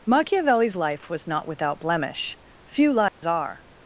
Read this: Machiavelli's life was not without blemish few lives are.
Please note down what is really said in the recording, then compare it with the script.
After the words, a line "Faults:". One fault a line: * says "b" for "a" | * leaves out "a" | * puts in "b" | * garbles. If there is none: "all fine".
Machiavelli's life was not without blemish few lives are.
Faults:
all fine